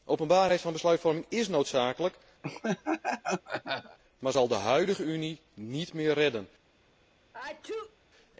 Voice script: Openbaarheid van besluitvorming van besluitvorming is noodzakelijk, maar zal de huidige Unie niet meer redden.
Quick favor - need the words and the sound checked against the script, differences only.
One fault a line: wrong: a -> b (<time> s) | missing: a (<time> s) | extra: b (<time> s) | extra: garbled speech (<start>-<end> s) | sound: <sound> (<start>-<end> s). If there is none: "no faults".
missing: van besluitvorming (1.2 s)
sound: laugh (2.4-4.0 s)
sound: sneeze (7.3-8.0 s)